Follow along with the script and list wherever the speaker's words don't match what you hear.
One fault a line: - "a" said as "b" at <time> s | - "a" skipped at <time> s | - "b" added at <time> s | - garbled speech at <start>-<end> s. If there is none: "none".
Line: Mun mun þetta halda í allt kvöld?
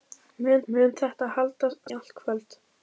none